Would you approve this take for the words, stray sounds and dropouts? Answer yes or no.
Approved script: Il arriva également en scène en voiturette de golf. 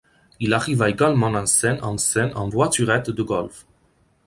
no